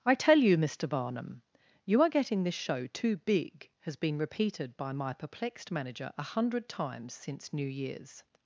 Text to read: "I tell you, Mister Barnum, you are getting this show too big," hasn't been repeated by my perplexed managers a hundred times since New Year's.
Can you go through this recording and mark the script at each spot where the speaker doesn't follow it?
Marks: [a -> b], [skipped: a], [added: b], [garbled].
"I tell you, Mister Barnum, you are getting this show too big," [hasn't -> has] been repeated by my perplexed [managers -> manager] a hundred times since New Year's.